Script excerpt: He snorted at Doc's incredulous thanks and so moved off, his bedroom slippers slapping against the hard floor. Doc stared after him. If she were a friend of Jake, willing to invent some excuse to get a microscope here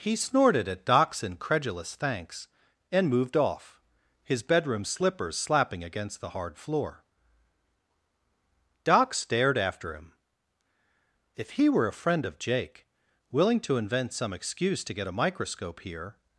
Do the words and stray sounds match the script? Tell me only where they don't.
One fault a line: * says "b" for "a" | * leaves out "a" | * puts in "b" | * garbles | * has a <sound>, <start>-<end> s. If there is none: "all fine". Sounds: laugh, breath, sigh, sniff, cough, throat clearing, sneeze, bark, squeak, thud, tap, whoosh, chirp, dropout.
* leaves out "so"
* says "he" for "she"